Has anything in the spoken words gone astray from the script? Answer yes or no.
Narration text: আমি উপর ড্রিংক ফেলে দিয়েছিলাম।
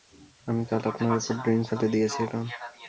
yes